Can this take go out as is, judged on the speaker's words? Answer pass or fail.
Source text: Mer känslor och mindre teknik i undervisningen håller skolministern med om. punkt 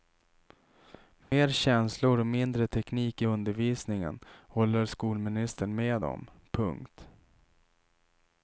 pass